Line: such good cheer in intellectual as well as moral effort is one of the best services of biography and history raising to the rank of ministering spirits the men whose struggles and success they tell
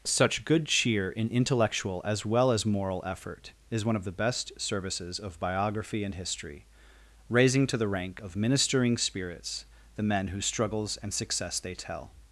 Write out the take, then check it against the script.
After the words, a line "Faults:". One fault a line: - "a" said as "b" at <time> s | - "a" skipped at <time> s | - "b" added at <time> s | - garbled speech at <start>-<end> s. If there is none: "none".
such good cheer in intellectual as well as moral effort is one of the best services of biography and history raising to the rank of ministering spirits the men whose struggles and success they tell
Faults:
none